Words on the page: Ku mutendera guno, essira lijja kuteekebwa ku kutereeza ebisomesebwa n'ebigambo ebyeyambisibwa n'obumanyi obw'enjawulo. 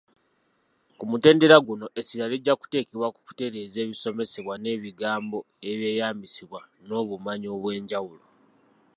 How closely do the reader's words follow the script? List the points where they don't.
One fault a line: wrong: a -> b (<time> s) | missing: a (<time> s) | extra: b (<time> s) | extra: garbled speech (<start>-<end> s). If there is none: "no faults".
no faults